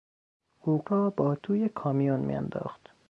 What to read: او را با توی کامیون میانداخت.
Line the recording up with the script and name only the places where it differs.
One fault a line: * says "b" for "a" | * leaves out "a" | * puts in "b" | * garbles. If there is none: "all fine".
all fine